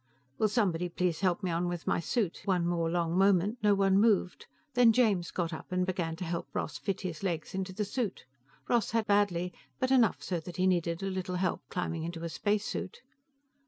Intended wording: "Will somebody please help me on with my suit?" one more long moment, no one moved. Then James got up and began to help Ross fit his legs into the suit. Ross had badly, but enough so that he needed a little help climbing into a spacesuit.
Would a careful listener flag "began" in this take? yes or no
no